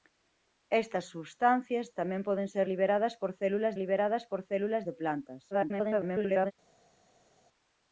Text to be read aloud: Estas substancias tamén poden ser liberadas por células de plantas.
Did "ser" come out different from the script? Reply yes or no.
no